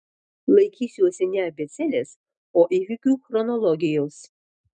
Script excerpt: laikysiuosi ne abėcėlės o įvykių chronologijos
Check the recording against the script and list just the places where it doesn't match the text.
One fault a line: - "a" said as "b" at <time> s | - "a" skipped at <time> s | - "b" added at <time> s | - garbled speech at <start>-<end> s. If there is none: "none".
none